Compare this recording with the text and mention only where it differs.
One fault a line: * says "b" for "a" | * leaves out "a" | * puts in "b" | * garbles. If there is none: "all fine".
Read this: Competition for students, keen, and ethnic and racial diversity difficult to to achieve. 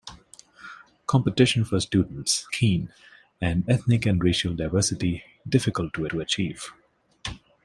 all fine